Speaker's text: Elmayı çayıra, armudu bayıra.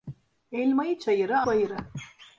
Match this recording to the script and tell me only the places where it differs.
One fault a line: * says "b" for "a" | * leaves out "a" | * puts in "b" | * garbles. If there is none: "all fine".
* leaves out "armudu"